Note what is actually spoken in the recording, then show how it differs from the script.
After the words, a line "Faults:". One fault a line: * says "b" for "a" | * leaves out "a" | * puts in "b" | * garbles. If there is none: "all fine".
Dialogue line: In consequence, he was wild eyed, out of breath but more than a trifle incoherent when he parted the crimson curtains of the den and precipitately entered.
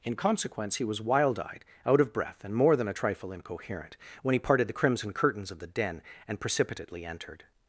In consequence, he was wild eyed, out of breath and more than a trifle incoherent when he parted the crimson curtains of the den and precipitately entered.
Faults:
* says "and" for "but"